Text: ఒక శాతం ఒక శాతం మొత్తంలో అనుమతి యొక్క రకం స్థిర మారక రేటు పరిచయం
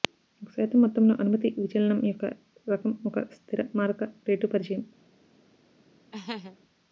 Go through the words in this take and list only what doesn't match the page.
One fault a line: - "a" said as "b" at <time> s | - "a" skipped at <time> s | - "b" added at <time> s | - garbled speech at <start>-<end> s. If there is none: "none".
- "ఒక శాతం" skipped at 0.8 s
- "విచలనం" added at 1.6 s
- "ఒక" added at 3.0 s